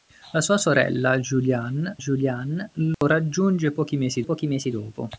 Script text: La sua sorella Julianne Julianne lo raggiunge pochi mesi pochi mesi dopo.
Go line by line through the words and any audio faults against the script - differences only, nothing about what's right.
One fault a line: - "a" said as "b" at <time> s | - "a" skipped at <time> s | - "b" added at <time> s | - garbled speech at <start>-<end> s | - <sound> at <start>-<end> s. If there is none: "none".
- dropout at 2.9-3.0 s